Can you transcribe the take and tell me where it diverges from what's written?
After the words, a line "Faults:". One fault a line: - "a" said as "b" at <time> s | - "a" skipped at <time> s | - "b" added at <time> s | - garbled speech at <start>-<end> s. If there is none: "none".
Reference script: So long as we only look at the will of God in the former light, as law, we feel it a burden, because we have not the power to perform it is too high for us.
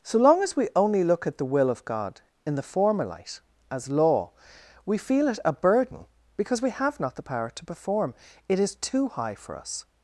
So long as we only look at the will of God in the former light, as law, we feel it a burden, because we have not the power to perform it is too high for us.
Faults:
none